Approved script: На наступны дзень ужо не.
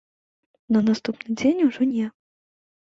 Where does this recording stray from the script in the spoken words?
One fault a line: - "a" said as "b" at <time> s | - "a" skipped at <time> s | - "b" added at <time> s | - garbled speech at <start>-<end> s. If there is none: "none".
none